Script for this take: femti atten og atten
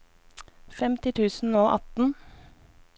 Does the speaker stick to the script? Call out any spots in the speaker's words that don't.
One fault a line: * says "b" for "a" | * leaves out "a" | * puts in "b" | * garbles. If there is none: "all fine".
* says "tusen" for "atten"